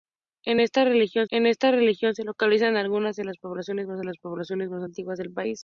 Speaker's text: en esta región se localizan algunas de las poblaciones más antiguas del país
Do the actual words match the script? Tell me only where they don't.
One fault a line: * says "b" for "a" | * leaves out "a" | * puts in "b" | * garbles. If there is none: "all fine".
* puts in "en esta región"
* puts in "las poblaciones más"